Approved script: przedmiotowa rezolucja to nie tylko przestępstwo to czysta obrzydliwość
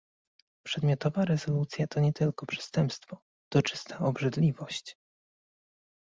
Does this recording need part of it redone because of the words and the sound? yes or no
no